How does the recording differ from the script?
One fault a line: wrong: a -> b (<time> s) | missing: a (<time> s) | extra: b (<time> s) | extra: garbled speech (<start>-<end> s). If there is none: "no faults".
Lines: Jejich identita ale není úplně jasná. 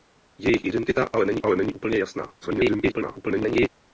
extra: ale není (1.4 s)
extra: garbled speech (2.4-3.7 s)